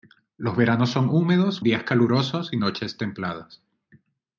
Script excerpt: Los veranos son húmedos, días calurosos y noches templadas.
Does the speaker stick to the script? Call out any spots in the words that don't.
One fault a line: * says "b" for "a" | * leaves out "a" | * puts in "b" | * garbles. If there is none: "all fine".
all fine